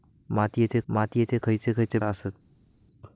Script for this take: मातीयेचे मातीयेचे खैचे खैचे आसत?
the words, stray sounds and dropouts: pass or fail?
pass